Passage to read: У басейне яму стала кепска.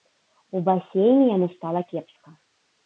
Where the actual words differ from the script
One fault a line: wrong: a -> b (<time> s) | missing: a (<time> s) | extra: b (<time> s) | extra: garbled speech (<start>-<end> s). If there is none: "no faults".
no faults